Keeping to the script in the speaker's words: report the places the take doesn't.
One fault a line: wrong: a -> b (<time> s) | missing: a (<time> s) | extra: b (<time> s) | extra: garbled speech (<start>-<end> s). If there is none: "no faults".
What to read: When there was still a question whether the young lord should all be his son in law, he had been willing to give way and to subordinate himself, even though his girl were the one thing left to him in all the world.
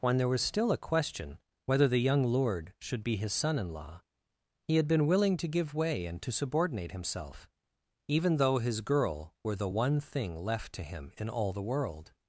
missing: all (3.0 s)